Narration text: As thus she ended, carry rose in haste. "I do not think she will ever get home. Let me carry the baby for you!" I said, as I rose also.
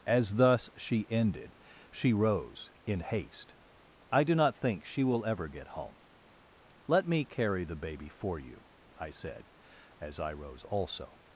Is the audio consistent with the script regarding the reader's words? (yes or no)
no